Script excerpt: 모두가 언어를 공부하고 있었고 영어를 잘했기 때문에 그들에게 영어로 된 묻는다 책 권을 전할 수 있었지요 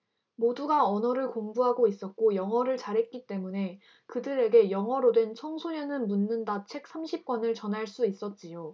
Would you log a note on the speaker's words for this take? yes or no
yes